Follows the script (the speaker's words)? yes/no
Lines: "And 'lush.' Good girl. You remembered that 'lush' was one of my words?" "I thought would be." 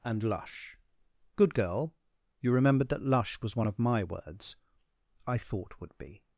yes